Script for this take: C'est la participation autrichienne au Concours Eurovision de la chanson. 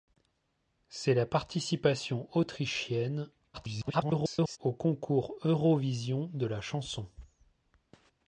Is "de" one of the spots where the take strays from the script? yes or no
no